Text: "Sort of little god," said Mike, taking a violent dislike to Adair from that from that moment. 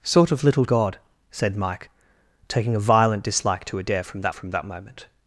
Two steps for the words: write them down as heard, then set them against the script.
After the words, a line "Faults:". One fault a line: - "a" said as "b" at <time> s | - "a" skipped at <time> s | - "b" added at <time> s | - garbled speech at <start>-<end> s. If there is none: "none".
"Sort of little god," said Mike, taking a violent dislike to Adair from that from that moment.
Faults:
none